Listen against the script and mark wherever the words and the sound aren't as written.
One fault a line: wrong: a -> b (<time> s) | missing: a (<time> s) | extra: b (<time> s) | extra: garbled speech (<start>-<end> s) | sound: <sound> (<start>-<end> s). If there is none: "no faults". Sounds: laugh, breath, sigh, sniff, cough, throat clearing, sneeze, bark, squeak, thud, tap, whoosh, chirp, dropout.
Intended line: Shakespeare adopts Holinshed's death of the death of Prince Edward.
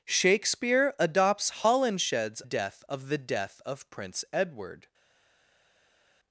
no faults